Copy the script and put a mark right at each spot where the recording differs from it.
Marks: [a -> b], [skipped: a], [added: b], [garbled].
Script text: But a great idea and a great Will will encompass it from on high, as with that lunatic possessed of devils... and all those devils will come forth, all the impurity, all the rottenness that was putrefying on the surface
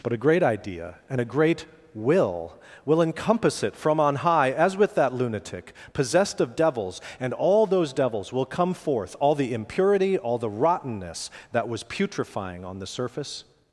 But a great idea and a great Will will encompass it from on high, as with that lunatic possessed of devils... and all those devils will come forth, all the impurity, all the rottenness that was putrefying on the surface